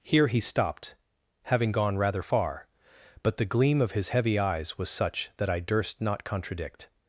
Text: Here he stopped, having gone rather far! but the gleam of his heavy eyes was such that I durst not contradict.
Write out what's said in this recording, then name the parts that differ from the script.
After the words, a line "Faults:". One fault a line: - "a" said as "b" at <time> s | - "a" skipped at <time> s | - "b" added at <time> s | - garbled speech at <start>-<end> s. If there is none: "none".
Here he stopped, having gone rather far! but the gleam of his heavy eyes was such that I durst not contradict.
Faults:
none